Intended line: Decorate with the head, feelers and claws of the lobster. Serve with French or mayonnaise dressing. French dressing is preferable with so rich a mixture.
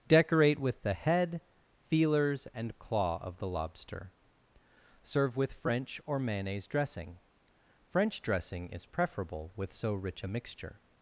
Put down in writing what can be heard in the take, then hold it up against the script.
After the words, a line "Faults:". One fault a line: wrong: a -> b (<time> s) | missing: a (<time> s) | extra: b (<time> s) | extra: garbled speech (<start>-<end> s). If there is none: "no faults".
Decorate with the head, feelers and claw of the lobster. Serve with French or mayonnaise dressing. French dressing is preferable with so rich a mixture.
Faults:
wrong: claws -> claw (2.8 s)